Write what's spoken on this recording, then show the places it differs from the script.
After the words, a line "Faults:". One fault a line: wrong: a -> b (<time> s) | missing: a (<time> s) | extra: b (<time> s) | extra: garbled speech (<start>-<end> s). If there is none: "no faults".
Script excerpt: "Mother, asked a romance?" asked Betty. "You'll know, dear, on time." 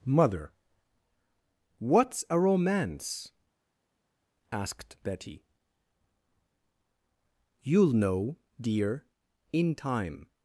"Mother, what's a romance?" asked Betty. "You'll know, dear, in time."
Faults:
wrong: asked -> what's (1.8 s)
wrong: on -> in (9.5 s)